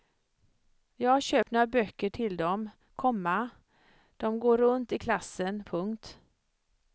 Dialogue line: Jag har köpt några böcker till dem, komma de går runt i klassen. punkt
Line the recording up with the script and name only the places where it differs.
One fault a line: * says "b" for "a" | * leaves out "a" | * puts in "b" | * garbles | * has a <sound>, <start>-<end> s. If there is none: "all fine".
* has a dropout, 1.4-1.5 s